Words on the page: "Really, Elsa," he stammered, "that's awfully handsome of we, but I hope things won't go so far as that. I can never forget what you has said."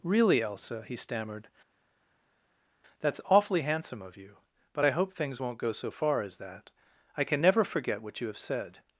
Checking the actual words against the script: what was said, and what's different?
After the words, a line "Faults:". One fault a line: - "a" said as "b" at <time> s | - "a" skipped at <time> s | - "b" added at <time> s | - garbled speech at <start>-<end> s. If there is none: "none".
"Really, Elsa," he stammered, "that's awfully handsome of you, but I hope things won't go so far as that. I can never forget what you have said."
Faults:
- "we" said as "you" at 4.2 s
- "has" said as "have" at 8.3 s